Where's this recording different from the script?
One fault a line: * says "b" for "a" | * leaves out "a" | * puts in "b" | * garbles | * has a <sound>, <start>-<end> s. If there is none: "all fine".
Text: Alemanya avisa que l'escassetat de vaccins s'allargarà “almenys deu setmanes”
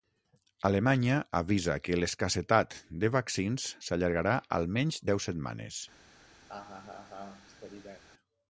* has a laugh, 6.5-8.0 s